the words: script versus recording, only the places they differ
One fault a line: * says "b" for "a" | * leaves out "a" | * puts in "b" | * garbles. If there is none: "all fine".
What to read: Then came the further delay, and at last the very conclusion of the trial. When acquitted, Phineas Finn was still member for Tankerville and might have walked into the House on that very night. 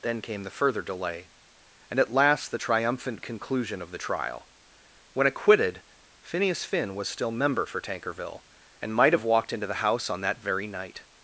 * says "triumphant" for "very"